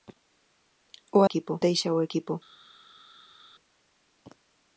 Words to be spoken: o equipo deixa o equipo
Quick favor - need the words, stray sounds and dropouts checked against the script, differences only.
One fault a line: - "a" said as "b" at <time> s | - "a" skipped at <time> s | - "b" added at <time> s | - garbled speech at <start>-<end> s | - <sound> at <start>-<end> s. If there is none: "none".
none